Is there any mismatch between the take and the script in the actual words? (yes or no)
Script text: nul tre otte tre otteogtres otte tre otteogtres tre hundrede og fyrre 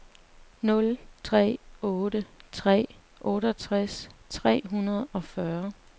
yes